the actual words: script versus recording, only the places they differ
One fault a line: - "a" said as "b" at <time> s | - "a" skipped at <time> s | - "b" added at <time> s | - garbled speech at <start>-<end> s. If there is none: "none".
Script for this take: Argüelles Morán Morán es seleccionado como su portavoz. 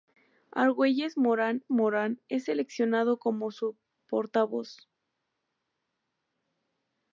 none